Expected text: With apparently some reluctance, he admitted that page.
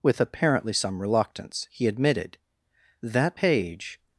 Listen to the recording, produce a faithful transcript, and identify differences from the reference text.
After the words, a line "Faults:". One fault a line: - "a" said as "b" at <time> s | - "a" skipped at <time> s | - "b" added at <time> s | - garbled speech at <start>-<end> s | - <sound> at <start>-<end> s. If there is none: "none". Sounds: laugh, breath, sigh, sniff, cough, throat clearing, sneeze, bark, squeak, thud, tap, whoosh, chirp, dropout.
With apparently some reluctance, he admitted that page.
Faults:
none